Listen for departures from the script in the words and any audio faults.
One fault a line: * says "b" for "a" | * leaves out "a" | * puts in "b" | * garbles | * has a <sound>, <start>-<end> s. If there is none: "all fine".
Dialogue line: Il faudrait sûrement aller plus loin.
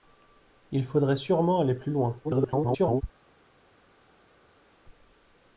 * garbles